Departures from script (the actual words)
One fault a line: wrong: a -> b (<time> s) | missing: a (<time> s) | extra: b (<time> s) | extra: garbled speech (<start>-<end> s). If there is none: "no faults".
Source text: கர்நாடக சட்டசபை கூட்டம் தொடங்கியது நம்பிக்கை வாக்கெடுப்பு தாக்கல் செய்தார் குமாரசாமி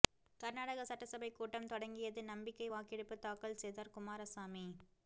no faults